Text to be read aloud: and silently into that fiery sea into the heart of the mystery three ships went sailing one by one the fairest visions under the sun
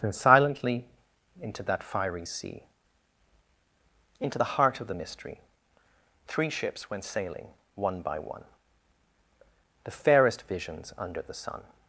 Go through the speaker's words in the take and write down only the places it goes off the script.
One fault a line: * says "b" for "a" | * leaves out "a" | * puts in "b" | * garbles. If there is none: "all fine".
all fine